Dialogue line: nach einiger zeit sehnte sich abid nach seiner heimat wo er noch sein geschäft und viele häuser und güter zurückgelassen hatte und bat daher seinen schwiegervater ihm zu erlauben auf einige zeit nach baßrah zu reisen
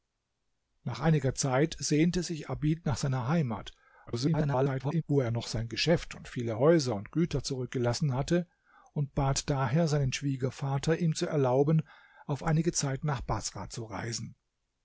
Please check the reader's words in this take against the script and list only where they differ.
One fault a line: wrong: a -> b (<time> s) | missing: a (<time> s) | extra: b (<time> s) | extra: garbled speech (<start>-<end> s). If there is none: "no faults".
extra: garbled speech (4.1-5.0 s)